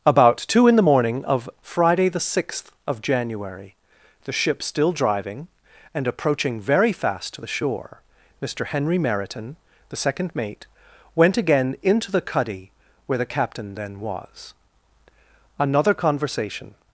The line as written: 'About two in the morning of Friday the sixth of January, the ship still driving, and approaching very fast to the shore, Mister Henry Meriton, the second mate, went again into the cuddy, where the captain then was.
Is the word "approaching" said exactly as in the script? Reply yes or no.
yes